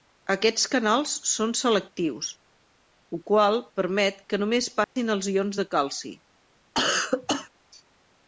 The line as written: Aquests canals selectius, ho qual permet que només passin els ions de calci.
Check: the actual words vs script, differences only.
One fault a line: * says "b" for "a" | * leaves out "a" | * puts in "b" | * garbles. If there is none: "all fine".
* puts in "són"